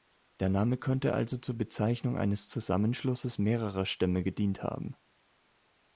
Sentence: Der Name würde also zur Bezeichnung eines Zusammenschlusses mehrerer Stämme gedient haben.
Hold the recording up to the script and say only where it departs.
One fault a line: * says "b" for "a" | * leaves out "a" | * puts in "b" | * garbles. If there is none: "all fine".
* says "könnte" for "würde"